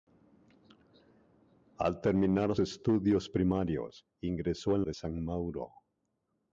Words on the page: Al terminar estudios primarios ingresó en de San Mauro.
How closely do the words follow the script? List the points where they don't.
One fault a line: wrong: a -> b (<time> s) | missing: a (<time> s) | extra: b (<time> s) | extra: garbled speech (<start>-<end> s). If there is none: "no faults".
no faults